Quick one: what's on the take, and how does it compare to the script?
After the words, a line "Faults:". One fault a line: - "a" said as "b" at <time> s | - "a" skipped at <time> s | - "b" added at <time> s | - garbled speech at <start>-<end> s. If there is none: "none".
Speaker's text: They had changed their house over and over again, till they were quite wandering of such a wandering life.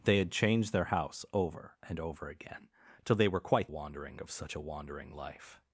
They had changed their house over and over again, till they were quite wandering of such a wandering life.
Faults:
none